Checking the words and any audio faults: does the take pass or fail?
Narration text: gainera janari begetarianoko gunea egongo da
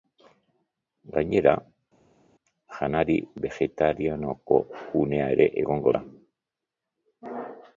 fail